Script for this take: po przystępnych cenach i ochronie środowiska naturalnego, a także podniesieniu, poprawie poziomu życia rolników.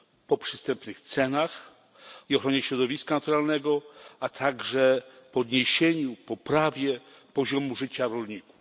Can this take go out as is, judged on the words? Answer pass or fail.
pass